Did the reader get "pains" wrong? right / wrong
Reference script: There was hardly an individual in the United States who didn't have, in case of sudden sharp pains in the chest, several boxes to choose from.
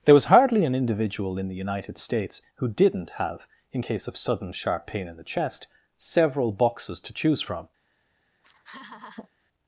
wrong